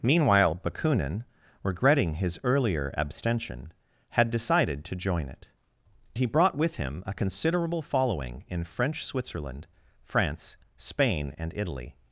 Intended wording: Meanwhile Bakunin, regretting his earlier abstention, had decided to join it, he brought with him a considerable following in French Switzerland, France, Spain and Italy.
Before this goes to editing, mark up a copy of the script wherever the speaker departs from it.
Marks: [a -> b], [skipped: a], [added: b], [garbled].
Meanwhile Bakunin, regretting his earlier abstention, had decided to join it, he brought with him a considerable following in French Switzerland, France, Spain and Italy.